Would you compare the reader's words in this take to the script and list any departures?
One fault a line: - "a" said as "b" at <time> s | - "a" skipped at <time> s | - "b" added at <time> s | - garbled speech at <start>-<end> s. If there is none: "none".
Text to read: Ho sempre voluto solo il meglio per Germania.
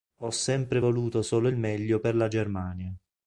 - "la" added at 2.2 s